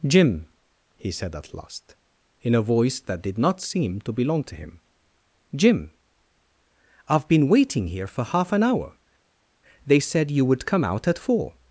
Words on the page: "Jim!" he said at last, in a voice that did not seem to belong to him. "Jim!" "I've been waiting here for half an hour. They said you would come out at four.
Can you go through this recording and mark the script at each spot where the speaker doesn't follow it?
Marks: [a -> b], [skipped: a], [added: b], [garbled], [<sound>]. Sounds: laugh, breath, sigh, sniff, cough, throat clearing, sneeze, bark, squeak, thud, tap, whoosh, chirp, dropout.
"Jim!" he said at last, in a voice that did not seem to belong to him. "Jim!" "I've been waiting here for half an hour. They said you would come out at four.